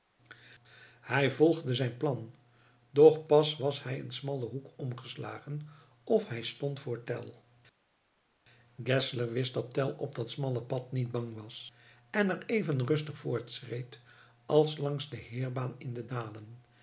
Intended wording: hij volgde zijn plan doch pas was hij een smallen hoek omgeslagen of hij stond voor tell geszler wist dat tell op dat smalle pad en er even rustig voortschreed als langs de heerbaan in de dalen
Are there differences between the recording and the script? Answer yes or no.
yes